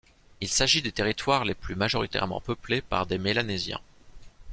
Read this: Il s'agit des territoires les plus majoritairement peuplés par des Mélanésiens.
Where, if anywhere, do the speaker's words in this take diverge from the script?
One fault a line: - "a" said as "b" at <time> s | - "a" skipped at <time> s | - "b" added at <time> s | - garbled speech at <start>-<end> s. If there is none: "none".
none